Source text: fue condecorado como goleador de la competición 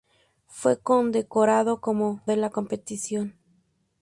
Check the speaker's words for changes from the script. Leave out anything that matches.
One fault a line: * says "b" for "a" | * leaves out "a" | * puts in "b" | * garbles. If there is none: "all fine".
* leaves out "goleador"